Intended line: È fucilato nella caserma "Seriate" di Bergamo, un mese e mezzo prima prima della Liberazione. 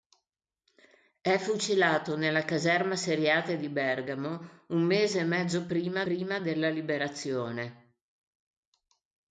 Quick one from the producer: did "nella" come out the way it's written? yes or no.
yes